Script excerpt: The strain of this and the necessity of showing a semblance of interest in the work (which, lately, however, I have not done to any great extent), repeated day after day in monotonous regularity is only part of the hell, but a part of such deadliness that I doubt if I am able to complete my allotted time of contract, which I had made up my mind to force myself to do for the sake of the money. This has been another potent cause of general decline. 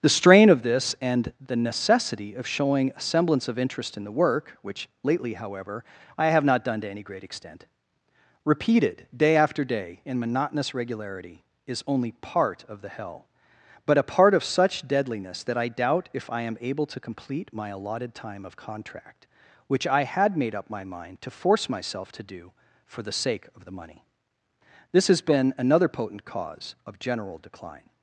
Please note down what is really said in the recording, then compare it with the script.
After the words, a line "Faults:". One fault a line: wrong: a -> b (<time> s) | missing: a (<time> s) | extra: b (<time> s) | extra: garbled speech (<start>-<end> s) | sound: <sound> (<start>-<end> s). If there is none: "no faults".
The strain of this and the necessity of showing a semblance of interest in the work (which, lately, however, I have not done to any great extent), repeated day after day in monotonous regularity is only part of the hell, but a part of such deadliness that I doubt if I am able to complete my allotted time of contract, which I had made up my mind to force myself to do for the sake of the money. This has been another potent cause of general decline.
Faults:
no faults